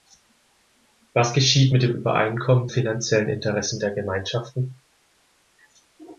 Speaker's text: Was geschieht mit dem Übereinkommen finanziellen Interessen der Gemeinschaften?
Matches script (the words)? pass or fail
pass